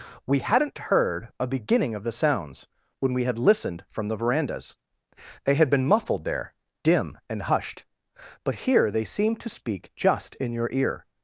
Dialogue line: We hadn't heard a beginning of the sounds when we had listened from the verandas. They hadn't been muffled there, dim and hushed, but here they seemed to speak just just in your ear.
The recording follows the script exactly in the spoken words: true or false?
false